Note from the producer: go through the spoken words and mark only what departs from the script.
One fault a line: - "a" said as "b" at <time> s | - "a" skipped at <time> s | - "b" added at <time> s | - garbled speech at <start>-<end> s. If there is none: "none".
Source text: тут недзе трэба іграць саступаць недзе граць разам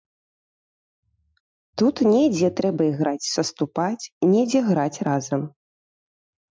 none